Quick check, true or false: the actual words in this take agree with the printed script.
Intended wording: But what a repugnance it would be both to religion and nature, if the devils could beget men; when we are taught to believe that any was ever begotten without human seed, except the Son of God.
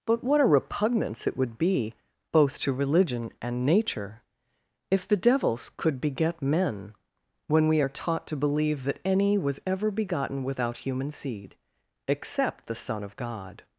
true